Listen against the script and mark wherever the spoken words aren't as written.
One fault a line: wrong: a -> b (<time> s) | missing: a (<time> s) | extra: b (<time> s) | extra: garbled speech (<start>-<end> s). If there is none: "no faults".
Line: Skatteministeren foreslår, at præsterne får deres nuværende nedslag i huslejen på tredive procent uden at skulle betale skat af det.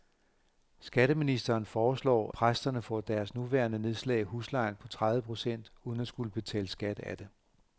missing: at (2.3 s)